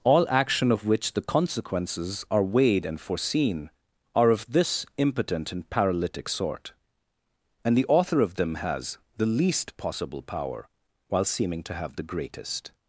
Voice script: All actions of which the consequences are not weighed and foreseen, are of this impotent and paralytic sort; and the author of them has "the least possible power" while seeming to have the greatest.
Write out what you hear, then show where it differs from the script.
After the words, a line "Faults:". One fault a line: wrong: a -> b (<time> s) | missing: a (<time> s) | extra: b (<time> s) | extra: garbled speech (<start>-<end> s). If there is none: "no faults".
All action of which the consequences are weighed and foreseen, are of this impotent and paralytic sort; and the author of them has "the least possible power" while seeming to have the greatest.
Faults:
wrong: actions -> action (0.3 s)
missing: not (2.4 s)